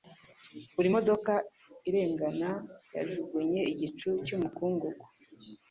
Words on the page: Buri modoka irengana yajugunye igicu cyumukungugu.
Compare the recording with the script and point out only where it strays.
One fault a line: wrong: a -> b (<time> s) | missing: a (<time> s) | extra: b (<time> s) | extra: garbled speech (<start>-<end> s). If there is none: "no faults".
no faults